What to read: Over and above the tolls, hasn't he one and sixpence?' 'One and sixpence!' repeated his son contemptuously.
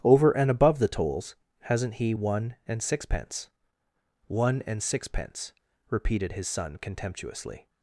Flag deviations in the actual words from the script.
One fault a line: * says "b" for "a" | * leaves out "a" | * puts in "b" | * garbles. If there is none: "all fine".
all fine